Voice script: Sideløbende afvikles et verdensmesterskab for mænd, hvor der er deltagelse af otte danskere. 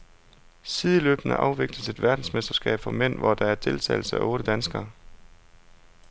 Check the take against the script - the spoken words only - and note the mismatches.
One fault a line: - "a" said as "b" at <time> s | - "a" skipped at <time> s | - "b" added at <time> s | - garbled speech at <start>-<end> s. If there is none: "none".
none